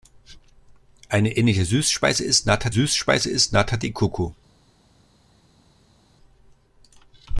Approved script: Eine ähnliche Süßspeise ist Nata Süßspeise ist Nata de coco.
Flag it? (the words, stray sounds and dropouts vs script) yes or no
no